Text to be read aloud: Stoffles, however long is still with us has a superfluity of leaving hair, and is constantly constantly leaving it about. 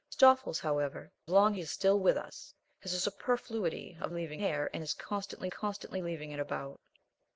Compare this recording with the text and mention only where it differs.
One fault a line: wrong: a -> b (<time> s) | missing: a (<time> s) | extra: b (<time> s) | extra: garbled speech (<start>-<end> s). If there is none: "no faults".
no faults